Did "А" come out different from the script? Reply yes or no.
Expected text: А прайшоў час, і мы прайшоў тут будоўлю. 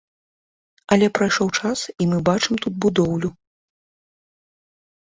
yes